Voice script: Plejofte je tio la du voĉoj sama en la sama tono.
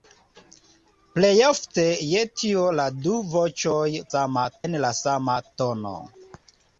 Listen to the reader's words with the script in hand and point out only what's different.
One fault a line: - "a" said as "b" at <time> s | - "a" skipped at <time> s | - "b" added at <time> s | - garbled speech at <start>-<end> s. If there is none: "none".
none